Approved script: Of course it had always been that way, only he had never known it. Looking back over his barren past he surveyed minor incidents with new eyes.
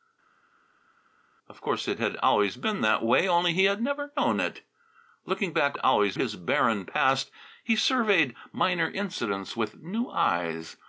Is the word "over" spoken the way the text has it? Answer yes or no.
no